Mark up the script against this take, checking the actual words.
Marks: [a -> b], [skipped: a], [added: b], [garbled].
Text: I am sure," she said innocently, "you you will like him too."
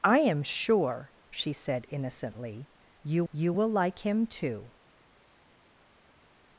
I am sure," she said innocently, "you you will like him too."